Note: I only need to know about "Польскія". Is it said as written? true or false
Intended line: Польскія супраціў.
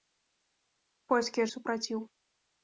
true